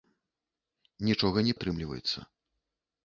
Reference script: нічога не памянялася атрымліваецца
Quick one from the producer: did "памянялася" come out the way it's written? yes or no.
no